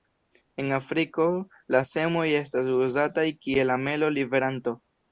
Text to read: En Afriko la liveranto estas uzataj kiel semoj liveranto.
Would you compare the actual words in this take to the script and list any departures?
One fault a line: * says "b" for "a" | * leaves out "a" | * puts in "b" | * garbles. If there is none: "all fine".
* says "semoj" for "liveranto"
* says "amelo" for "semoj"